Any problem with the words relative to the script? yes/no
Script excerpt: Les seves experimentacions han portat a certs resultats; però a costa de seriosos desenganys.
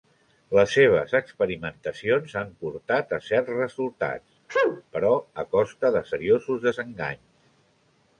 no